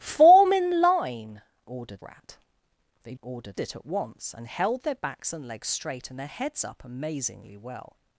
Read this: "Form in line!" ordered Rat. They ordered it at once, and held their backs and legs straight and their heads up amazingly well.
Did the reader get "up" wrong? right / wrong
right